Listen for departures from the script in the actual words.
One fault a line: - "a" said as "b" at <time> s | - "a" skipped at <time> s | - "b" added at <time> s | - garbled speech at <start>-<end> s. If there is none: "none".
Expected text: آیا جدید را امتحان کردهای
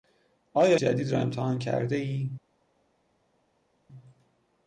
none